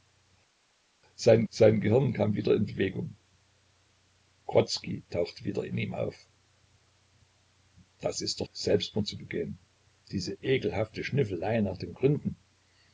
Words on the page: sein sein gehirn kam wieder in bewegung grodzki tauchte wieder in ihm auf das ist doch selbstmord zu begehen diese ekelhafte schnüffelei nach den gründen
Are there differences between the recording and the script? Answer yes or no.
no